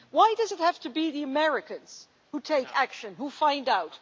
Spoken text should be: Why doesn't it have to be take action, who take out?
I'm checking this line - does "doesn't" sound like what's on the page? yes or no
no